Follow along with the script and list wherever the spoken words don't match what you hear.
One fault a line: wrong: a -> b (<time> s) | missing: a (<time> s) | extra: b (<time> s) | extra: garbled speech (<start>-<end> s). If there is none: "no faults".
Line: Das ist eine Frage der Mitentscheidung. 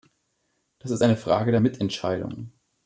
no faults